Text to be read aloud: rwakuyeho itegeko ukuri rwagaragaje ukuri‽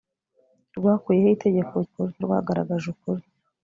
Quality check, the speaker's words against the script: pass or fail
pass